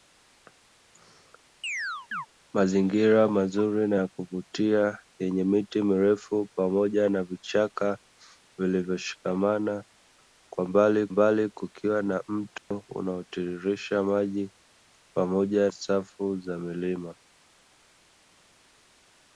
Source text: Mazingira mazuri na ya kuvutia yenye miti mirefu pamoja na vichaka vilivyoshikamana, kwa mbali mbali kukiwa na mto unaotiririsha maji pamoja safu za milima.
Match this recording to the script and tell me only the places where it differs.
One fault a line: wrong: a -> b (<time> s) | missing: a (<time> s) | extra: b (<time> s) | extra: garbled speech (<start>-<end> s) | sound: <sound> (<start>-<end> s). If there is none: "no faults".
sound: chirp (1.6-2.3 s)
sound: dropout (12.6-12.7 s)